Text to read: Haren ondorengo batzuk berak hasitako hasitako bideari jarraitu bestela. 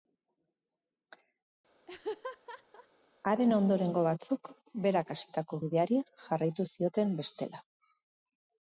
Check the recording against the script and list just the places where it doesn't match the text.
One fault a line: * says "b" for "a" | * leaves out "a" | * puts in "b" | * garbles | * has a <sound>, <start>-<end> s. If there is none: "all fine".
* has a laugh, 1.9-2.9 s
* leaves out "hasitako"
* puts in "zioten"